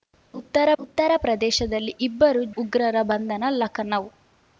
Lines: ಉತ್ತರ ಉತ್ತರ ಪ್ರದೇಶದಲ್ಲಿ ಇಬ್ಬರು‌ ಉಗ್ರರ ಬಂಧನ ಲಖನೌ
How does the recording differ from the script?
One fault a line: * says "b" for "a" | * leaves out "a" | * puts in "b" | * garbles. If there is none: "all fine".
all fine